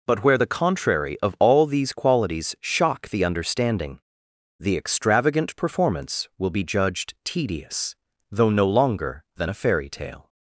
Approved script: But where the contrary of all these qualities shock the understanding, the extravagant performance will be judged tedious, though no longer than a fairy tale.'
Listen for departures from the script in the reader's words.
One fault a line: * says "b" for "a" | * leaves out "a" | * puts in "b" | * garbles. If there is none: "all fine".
all fine